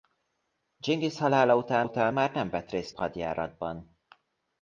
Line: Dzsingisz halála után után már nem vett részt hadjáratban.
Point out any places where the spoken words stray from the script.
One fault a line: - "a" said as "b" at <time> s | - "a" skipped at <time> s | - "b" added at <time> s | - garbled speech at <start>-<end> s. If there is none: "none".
none